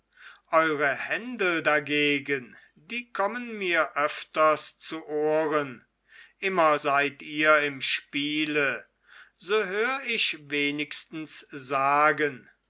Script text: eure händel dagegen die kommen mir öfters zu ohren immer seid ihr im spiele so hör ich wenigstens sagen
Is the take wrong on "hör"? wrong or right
right